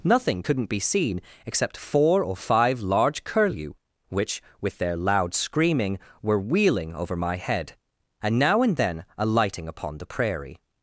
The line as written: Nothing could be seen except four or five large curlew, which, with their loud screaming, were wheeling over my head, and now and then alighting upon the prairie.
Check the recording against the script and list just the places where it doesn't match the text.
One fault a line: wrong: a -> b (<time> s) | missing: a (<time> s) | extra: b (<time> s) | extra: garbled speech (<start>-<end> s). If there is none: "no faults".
wrong: could -> couldn't (0.4 s)